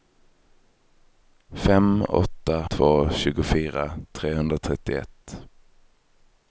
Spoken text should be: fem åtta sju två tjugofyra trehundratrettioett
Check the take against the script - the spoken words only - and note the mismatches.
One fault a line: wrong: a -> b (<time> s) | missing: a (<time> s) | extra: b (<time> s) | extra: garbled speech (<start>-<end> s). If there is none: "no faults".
missing: sju (2.7 s)